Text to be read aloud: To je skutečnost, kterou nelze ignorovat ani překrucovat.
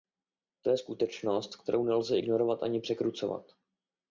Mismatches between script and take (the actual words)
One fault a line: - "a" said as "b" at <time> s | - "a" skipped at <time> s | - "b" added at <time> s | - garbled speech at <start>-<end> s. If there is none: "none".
none